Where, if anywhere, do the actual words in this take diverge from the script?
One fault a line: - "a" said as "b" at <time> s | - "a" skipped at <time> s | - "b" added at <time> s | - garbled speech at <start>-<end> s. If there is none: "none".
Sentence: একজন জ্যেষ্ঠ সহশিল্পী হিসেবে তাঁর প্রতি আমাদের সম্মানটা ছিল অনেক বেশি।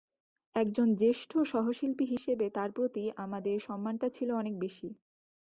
none